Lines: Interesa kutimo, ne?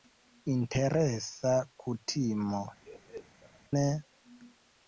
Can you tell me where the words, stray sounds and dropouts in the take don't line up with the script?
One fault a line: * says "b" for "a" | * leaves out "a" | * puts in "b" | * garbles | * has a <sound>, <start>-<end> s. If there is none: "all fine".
* has a laugh, 2.8-3.6 s